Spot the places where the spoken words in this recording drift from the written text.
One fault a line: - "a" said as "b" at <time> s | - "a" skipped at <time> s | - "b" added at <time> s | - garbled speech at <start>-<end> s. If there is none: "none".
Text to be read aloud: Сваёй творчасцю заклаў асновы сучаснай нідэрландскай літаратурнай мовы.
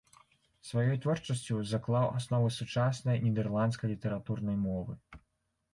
none